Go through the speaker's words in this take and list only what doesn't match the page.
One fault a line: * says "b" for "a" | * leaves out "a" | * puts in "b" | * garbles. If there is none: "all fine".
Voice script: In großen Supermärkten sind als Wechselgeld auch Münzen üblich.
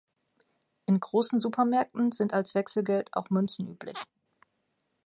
all fine